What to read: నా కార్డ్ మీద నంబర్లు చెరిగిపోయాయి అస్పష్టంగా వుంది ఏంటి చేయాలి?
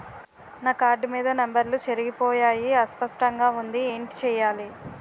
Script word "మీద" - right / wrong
right